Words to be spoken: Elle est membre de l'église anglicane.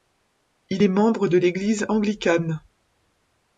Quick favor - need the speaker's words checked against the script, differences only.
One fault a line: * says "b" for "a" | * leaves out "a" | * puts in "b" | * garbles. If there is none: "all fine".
* says "Il" for "Elle"